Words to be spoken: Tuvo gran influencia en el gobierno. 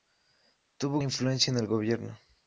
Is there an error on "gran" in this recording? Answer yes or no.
yes